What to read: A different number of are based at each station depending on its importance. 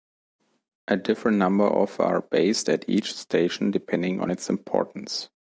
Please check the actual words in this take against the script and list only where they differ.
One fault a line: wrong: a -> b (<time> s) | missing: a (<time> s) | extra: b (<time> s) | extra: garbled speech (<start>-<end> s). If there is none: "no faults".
no faults